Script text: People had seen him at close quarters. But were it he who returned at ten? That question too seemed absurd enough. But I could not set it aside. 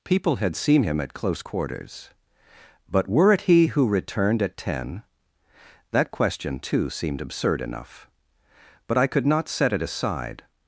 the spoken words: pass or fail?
pass